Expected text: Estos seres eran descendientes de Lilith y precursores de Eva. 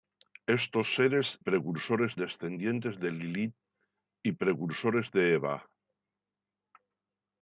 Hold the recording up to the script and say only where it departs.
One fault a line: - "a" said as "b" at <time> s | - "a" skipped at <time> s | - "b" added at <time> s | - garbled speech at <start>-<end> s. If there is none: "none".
- "eran" said as "precursores" at 1.4 s